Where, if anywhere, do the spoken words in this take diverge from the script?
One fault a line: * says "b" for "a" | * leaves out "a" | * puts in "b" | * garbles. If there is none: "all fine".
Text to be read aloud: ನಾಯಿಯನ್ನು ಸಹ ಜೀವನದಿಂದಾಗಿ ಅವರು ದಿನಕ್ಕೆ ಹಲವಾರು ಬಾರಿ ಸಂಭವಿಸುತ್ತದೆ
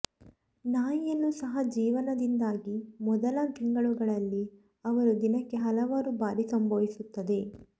* puts in "ಮೊದಲ ತಿಂಗಳುಗಳಲ್ಲಿ"